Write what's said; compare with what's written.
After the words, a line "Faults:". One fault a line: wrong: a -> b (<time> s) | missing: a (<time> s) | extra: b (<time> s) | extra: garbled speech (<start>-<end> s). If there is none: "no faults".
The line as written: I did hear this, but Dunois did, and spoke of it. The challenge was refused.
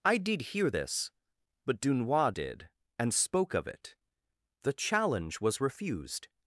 I did hear this, but Dunois did, and spoke of it. The challenge was refused.
Faults:
no faults